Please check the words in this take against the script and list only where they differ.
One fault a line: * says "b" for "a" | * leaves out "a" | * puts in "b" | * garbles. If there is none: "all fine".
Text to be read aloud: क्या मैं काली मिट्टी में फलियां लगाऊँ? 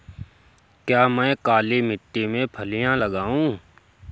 all fine